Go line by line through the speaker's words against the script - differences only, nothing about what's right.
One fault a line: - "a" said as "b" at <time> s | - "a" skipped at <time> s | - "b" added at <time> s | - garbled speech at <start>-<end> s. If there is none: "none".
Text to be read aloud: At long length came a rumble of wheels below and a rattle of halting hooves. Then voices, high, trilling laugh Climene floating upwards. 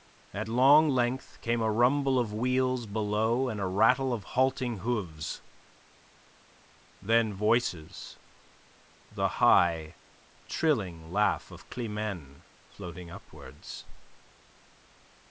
- "the" added at 9.1 s
- "of" added at 11.5 s